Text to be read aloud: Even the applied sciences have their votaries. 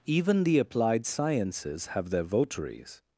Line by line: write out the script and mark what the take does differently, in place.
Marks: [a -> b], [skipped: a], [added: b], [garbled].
Even the applied sciences have their votaries.